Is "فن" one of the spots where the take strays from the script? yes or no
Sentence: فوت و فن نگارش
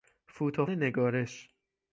yes